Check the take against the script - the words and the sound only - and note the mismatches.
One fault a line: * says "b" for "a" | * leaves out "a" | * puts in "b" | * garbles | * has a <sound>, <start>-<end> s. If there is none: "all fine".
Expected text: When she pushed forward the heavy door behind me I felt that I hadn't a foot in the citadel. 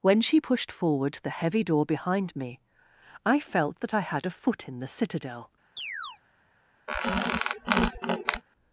* says "had" for "hadn't"
* has a chirp, 5.8-6.2 s
* has a squeak, 6.9-8.4 s